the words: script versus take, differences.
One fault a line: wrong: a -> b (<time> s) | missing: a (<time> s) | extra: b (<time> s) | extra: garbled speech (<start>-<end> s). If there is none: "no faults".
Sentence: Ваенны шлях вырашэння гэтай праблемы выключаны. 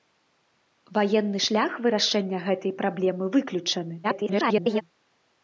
extra: garbled speech (4.0-4.8 s)